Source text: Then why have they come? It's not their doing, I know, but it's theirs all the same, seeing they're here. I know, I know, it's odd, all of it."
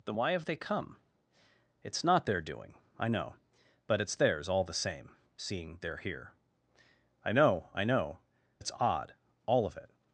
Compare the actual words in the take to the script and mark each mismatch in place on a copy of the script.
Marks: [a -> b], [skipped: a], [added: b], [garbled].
Then why have they come? It's not their doing, I know, but it's theirs all the same, seeing they're here. I know, I know, it's odd, all of it."